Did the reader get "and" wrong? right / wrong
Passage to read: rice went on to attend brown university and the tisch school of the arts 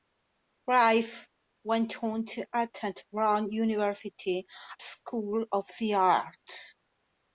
wrong